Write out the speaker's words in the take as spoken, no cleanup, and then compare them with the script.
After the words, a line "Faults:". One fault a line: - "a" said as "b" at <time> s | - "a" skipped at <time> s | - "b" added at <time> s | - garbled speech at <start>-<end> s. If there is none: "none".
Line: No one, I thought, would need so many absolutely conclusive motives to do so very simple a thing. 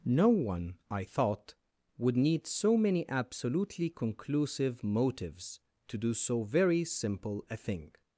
No one, I thought, would need so many absolutely conclusive motives to do so very simple a thing.
Faults:
none